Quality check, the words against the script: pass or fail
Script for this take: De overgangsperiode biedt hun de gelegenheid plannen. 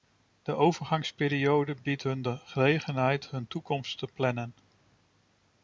fail